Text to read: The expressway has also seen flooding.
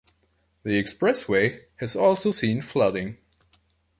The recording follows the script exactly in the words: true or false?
true